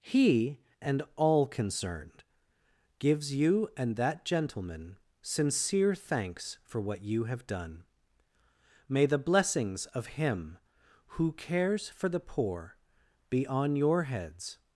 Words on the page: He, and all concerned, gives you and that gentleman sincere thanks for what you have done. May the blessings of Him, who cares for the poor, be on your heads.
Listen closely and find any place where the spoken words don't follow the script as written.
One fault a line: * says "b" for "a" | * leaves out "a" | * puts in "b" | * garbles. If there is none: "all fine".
all fine